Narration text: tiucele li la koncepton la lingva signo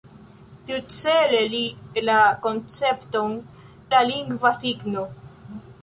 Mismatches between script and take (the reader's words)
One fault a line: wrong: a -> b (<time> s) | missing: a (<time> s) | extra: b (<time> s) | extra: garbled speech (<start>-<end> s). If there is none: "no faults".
no faults